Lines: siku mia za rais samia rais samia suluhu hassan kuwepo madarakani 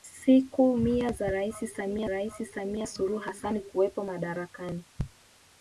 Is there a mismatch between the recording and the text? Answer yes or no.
no